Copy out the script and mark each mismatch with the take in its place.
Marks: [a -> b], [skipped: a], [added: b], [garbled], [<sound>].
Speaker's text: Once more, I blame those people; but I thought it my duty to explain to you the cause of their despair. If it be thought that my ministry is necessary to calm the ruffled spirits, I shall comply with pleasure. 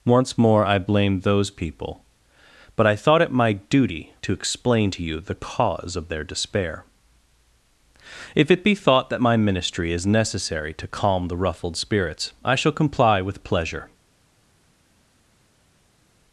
Once more, I blame those people; but I thought it my duty to explain to you the cause of their despair. If it be thought that my ministry is necessary to calm the ruffled spirits, I shall comply with pleasure.